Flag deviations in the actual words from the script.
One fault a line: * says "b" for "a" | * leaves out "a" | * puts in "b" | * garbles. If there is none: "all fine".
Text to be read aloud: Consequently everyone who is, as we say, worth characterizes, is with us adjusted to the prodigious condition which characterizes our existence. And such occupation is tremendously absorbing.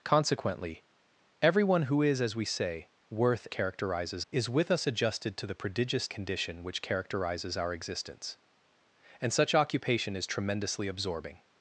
all fine